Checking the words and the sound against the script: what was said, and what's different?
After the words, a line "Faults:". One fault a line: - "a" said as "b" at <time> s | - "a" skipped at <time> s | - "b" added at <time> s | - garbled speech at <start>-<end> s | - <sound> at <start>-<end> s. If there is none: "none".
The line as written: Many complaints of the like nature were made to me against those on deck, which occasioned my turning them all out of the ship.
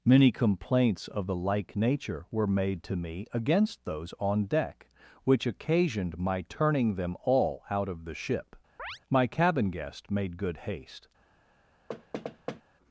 Many complaints of the like nature were made to me against those on deck, which occasioned my turning them all out of the ship. My cabin guest made good haste
Faults:
- chirp at 8.8-9.0 s
- "My cabin guest made good haste" added at 9.1 s
- thud at 11.9-12.6 s